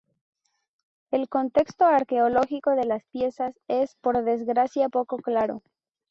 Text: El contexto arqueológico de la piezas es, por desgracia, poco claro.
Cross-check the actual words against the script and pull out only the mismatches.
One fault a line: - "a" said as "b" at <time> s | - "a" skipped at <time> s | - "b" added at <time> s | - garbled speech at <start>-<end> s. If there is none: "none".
- "la" said as "las" at 2.9 s